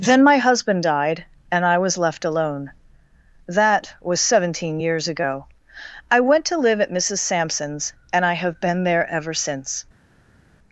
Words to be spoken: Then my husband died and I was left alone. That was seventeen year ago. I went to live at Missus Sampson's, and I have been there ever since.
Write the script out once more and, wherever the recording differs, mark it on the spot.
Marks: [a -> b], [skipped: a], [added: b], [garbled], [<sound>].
Then my husband died and I was left alone. That was seventeen [year -> years] ago. I went to live at Missus Sampson's, and I have been there ever since.